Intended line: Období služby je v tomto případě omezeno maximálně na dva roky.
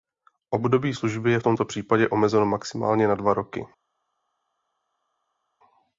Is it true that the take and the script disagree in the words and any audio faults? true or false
false